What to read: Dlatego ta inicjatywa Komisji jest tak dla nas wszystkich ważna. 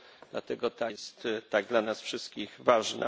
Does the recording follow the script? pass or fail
fail